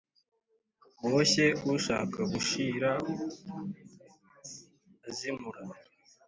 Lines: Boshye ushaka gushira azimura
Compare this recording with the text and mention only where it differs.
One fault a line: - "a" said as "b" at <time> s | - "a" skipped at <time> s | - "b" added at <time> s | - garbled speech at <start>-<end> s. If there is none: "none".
none